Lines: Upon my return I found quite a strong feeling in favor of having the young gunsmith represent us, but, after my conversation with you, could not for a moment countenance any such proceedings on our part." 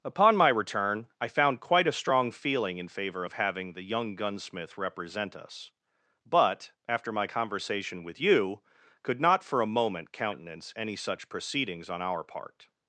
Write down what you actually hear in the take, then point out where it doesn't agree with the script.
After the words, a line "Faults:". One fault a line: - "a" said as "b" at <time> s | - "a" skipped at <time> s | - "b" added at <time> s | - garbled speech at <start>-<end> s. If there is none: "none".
Upon my return I found quite a strong feeling in favor of having the young gunsmith represent us, but, after my conversation with you, could not for a moment countenance any such proceedings on our part."
Faults:
none